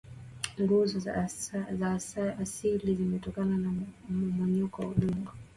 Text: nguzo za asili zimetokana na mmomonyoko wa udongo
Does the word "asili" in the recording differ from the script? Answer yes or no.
no